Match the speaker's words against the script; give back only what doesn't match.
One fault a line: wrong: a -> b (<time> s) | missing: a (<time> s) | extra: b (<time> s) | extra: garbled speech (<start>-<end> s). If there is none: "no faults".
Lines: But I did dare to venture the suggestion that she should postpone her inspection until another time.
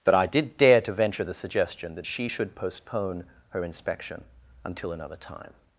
no faults